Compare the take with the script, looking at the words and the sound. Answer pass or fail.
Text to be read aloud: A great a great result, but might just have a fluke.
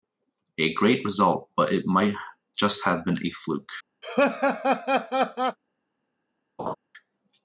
fail